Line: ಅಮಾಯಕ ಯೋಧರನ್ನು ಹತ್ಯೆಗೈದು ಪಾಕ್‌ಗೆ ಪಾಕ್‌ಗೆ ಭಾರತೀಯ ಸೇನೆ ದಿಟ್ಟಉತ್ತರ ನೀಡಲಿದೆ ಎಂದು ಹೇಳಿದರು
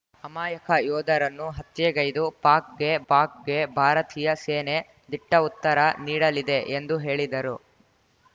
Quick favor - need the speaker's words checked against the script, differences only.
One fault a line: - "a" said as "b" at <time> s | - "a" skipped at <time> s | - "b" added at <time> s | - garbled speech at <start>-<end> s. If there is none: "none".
none